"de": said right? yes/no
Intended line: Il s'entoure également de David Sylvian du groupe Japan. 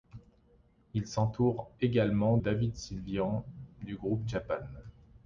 no